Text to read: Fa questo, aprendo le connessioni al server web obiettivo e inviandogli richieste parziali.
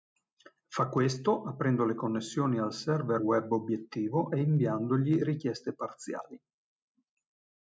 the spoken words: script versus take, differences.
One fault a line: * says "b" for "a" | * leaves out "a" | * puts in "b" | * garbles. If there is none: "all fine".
all fine